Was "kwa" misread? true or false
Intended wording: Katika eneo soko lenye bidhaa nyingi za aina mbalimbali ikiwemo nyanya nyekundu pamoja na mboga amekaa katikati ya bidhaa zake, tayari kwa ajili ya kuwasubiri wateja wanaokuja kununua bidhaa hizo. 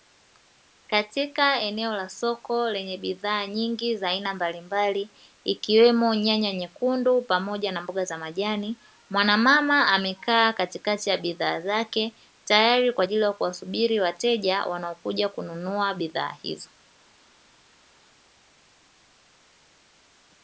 false